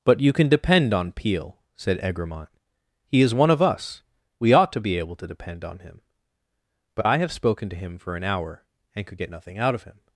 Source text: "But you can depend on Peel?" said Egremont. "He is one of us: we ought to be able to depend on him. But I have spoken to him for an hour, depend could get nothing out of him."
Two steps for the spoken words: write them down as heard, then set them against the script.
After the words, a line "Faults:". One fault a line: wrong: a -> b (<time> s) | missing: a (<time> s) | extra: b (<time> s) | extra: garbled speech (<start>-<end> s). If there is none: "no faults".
"But you can depend on Peel?" said Egremont. "He is one of us: we ought to be able to depend on him. But I have spoken to him for an hour, and could get nothing out of him."
Faults:
wrong: depend -> and (8.9 s)